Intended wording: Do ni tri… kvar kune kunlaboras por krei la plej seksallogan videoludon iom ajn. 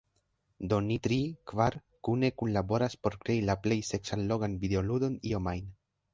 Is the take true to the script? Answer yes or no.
yes